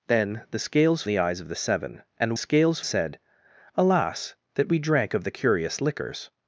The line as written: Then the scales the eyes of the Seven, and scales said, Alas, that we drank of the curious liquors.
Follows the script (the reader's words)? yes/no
yes